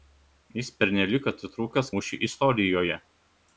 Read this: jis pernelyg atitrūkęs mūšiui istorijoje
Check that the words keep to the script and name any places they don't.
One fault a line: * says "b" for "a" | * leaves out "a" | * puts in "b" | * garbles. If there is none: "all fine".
all fine